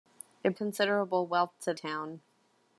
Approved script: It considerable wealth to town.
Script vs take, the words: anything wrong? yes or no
no